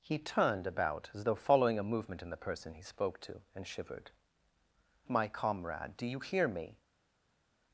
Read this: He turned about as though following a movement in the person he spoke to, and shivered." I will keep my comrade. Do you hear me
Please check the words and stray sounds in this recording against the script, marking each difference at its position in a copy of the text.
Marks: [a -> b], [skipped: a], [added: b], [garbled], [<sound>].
He turned about as though following a movement in the person he spoke to, and shivered." [skipped: I will keep] my comrade. Do you hear me